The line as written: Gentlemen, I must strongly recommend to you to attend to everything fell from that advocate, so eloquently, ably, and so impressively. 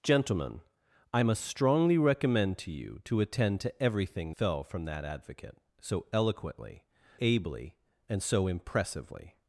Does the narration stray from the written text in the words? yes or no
no